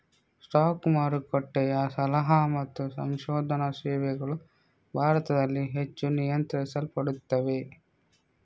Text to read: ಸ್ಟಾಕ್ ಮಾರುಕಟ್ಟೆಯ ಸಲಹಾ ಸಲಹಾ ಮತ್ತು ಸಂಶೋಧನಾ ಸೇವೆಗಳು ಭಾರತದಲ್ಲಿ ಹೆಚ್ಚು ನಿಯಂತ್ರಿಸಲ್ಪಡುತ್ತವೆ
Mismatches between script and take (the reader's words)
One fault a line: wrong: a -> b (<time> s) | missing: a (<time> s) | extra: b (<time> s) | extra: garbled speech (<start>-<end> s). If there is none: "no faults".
missing: ಸಲಹಾ (2.4 s)